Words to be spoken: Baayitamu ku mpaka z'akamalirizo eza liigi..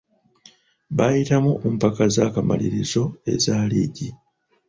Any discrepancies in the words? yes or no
no